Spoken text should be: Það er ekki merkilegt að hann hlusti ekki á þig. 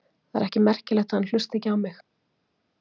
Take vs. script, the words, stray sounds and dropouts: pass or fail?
fail